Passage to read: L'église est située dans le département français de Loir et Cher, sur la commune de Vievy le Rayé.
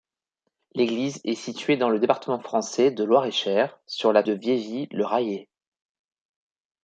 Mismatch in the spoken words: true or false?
true